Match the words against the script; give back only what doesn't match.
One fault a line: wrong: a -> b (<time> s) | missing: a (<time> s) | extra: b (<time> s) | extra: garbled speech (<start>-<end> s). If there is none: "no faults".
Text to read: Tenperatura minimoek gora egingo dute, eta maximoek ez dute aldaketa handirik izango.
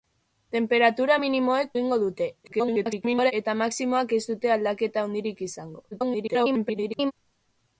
missing: gora (1.7 s)
extra: garbled speech (2.4-3.3 s)
extra: garbled speech (5.9-7.1 s)